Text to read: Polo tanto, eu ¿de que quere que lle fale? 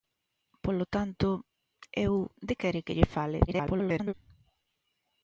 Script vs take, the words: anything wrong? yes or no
yes